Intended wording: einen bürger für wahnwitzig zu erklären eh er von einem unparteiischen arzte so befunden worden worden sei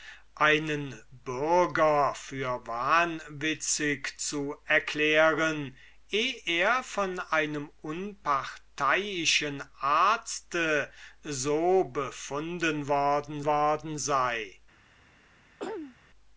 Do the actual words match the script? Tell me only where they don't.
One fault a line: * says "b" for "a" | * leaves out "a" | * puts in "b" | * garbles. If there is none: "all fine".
all fine